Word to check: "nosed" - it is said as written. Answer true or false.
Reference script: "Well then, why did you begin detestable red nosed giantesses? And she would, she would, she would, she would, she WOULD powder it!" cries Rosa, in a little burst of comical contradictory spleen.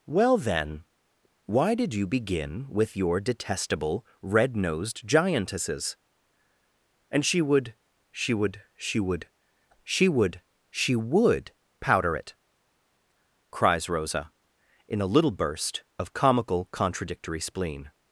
true